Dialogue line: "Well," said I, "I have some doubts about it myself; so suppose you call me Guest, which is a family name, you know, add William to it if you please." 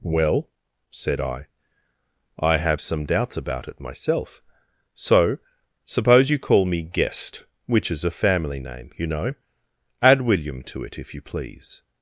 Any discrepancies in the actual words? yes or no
no